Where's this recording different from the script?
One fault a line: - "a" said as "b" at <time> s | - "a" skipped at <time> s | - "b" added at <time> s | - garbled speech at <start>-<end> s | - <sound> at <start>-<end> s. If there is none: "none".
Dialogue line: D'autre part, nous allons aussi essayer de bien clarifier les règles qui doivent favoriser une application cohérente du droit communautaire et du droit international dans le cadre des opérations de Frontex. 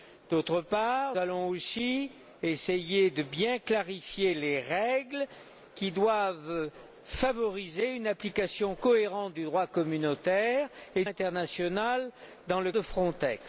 - "nous" skipped at 1.2 s
- "du droit" skipped at 11.0 s
- "cadre des opérations" skipped at 12.7 s